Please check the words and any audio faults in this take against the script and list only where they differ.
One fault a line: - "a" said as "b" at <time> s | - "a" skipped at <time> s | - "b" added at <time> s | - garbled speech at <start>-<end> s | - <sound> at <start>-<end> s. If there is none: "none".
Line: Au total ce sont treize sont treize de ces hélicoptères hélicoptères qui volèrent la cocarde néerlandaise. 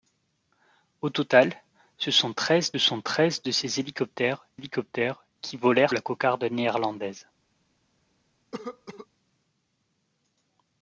- cough at 8.5-9.1 s